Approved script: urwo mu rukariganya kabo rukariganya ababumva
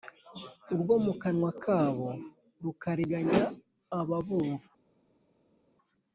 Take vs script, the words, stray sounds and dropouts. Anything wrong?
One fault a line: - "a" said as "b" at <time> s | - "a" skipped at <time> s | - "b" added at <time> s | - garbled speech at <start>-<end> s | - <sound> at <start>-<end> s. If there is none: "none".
- "rukariganya" said as "kanwa" at 1.2 s